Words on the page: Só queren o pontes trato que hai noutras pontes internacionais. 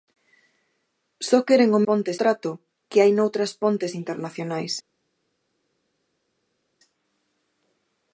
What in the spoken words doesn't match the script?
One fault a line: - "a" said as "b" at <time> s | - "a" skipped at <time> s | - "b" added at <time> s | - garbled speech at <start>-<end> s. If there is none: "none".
none